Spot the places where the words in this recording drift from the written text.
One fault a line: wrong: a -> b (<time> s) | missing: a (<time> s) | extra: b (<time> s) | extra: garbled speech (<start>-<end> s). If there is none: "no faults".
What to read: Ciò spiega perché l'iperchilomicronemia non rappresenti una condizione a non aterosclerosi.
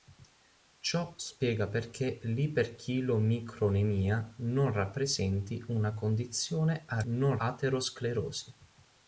no faults